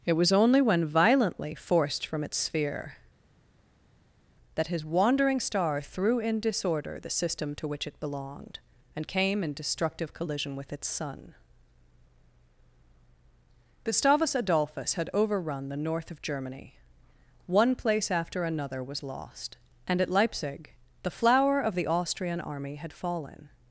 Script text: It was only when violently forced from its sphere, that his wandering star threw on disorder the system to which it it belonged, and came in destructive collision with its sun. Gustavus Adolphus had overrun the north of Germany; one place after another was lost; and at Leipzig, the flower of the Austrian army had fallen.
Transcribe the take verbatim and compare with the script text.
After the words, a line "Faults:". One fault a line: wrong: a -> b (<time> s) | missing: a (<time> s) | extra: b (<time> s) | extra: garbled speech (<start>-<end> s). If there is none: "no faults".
It was only when violently forced from its sphere, that his wandering star threw in disorder the system to which it belonged, and came in destructive collision with its sun. Gustavus Adolphus had overrun the north of Germany; one place after another was lost; and at Leipzig, the flower of the Austrian army had fallen.
Faults:
wrong: on -> in (6.2 s)
missing: it (8.0 s)